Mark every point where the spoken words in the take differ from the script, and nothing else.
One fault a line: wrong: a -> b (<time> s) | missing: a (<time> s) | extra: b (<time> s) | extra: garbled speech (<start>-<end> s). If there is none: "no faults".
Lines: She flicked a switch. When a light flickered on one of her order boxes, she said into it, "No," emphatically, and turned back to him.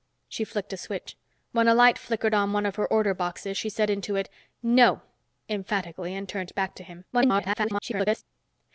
extra: garbled speech (7.1-8.2 s)